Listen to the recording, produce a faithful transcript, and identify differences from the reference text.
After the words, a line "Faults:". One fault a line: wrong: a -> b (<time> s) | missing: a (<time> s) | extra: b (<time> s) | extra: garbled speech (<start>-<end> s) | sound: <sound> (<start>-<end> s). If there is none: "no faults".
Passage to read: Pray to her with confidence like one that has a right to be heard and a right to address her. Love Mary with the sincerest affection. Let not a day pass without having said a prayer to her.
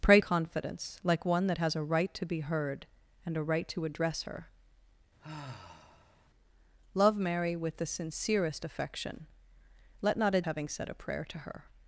Pray confidence like one that has a right to be heard and a right to address her. Love Mary with the sincerest affection. Let not a having said a prayer to her.
Faults:
missing: to her with (0.2 s)
sound: sigh (5.2-6.3 s)
missing: day pass without (10.4 s)